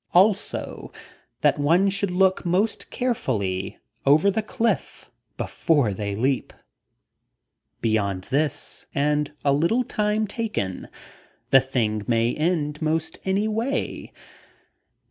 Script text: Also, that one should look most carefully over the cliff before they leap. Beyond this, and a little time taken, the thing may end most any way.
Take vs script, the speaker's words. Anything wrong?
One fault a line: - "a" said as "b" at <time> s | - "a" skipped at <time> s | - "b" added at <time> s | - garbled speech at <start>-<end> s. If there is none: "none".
none